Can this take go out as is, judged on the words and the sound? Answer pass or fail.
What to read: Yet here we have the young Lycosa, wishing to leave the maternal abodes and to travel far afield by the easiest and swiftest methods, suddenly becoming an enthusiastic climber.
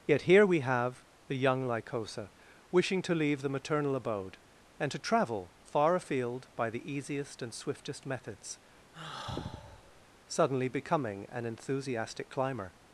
fail